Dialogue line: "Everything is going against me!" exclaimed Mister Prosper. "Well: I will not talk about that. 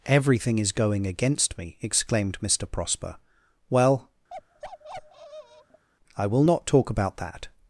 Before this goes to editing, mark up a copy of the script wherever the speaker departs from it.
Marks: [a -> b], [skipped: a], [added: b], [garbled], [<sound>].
"Everything is going against me!" exclaimed Mister Prosper. "Well: [bark] I will not talk about that.